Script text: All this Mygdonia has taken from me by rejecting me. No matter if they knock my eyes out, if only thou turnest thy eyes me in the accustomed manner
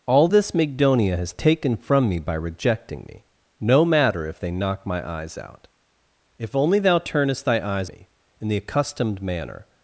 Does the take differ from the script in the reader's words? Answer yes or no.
no